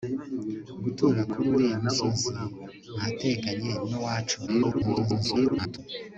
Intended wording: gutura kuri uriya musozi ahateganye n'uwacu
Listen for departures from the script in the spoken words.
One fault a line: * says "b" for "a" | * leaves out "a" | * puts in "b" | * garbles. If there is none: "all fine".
* garbles